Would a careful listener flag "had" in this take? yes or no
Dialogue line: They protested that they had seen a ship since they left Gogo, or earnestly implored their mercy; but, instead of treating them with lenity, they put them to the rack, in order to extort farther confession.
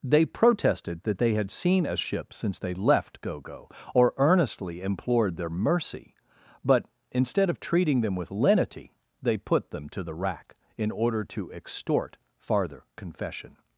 no